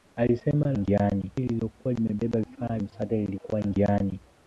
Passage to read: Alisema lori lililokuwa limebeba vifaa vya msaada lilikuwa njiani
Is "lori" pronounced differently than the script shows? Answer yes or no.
yes